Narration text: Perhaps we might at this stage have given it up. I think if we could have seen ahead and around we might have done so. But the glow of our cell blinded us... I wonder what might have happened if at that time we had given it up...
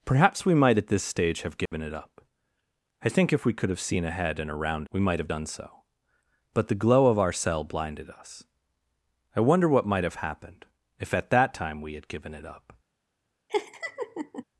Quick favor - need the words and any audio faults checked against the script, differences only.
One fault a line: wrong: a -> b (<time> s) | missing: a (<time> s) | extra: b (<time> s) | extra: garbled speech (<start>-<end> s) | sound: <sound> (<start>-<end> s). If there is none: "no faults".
sound: dropout (1.7-1.7 s)
sound: laugh (13.5-14.4 s)